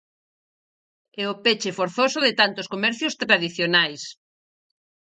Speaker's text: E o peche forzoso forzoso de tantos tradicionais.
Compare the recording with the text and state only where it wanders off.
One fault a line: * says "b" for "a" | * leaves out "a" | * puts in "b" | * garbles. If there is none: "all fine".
* leaves out "forzoso"
* puts in "comercios"